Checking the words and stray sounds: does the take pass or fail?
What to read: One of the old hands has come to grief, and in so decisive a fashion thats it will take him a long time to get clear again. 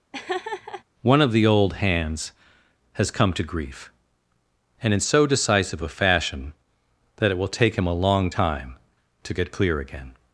fail